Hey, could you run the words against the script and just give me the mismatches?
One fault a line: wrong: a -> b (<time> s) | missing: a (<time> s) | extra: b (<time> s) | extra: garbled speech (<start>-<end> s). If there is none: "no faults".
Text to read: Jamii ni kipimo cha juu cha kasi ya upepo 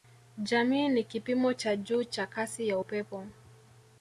no faults